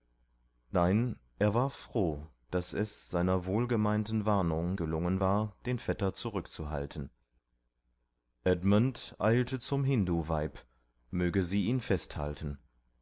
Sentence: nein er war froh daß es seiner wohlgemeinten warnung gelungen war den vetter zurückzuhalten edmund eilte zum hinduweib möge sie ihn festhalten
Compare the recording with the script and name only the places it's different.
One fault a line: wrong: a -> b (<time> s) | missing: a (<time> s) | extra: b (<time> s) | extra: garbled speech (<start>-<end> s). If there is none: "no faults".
no faults